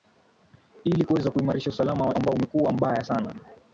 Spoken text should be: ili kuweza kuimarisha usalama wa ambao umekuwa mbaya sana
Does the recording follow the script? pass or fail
pass